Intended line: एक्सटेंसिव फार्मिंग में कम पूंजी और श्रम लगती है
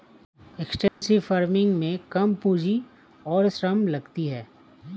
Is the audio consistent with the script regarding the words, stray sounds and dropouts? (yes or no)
no